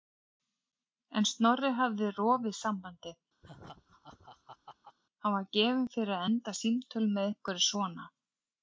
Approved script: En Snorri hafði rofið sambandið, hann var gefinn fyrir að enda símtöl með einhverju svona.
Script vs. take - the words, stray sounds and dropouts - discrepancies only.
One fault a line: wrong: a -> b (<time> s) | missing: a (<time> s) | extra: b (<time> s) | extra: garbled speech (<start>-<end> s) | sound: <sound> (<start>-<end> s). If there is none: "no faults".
sound: laugh (3.4-5.0 s)